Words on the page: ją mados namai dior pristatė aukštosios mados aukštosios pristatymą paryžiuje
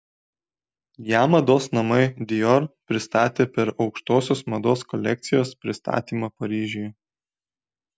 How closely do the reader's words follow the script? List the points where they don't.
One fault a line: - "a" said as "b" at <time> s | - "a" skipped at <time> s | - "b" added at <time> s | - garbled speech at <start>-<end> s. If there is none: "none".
- "per" added at 3.6 s
- "aukštosios" said as "kolekcijos" at 5.0 s